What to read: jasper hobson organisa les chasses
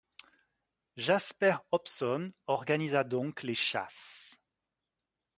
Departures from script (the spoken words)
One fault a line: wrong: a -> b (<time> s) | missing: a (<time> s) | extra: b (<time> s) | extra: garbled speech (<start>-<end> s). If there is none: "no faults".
extra: donc (3.0 s)